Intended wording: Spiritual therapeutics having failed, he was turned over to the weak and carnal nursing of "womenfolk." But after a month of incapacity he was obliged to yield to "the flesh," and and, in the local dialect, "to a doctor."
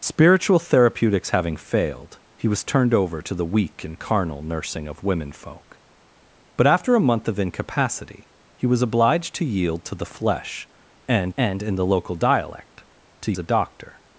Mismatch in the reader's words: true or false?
false